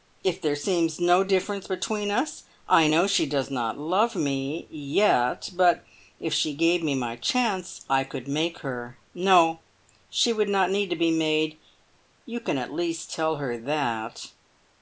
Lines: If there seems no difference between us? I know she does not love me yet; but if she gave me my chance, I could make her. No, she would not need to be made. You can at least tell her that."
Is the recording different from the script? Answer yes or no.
no